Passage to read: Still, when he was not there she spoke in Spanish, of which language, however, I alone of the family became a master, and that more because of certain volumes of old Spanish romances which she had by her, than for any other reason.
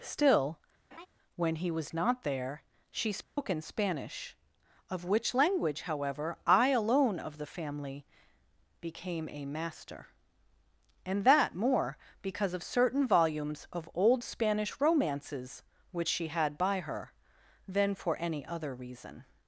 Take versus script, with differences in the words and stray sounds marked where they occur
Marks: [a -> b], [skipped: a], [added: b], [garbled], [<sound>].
Still, [laugh] when he was not there she spoke [dropout] in Spanish, of which language, however, I alone of the family became a master, and that more because of certain volumes of old Spanish romances which she had by her, than for any other reason.